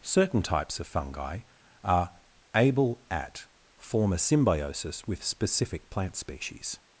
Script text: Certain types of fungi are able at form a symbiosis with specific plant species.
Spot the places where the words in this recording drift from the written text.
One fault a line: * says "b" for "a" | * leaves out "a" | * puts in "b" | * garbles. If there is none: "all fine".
all fine